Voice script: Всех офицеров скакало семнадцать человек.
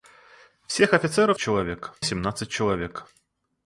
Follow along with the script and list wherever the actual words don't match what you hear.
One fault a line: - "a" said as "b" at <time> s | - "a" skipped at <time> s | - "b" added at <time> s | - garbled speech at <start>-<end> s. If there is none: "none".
- "скакало" said as "человек" at 1.4 s